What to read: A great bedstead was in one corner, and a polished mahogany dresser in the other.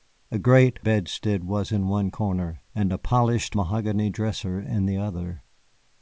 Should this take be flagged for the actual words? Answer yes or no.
no